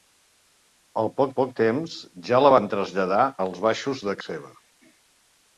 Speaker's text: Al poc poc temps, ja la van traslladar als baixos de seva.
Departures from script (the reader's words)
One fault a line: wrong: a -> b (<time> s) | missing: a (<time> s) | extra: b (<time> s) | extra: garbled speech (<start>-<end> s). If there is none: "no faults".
no faults